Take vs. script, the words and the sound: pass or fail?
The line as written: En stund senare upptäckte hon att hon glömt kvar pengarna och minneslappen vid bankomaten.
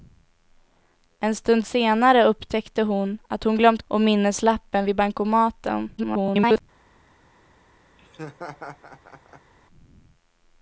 fail